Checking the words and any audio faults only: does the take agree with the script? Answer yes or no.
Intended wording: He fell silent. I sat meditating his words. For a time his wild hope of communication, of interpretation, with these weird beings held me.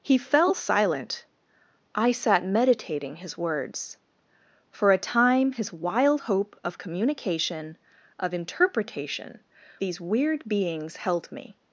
no